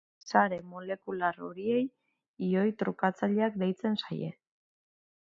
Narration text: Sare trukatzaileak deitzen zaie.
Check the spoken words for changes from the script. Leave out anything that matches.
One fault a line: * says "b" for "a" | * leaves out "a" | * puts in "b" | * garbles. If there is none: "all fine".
* puts in "molekular horiei ioi"